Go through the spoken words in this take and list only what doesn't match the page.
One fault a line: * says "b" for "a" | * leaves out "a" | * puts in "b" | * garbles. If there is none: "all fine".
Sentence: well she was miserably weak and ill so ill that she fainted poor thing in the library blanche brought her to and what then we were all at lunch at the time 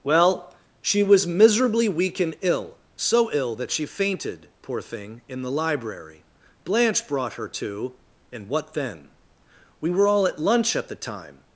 all fine